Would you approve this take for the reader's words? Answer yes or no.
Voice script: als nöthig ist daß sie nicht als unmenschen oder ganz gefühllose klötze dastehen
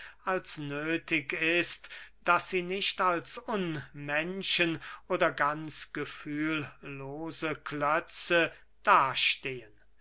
yes